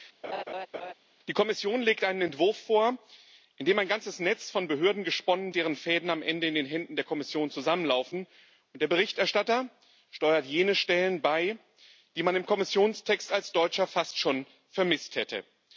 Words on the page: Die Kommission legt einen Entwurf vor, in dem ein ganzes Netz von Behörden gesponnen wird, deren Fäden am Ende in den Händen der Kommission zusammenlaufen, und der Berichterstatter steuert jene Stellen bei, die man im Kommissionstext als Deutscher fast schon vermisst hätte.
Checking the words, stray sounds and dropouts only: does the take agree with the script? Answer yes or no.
no